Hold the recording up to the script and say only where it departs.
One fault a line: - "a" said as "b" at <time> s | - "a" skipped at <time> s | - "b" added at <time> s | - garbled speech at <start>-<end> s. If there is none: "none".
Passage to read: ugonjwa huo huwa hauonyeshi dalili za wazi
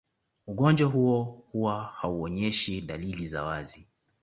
none